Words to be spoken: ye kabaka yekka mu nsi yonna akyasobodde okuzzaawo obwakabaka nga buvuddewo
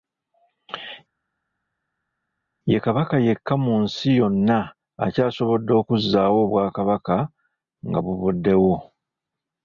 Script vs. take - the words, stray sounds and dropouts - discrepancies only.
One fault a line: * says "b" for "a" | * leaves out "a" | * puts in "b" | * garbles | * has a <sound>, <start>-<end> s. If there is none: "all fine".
all fine